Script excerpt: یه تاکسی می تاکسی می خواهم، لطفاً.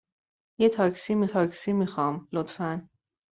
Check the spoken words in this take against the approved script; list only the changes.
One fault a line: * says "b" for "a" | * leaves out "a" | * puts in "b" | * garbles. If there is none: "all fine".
all fine